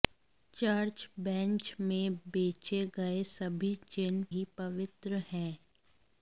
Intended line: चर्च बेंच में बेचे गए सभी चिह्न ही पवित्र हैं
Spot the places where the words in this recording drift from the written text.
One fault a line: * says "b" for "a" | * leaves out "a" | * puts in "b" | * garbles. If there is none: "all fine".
all fine